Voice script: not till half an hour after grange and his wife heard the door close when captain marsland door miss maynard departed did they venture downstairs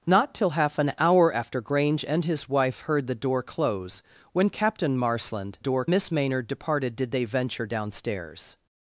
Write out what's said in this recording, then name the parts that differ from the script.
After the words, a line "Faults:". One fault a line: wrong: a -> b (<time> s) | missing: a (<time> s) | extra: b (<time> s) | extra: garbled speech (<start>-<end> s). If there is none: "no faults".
not till half an hour after grange and his wife heard the door close when captain marsland door miss maynard departed did they venture downstairs
Faults:
no faults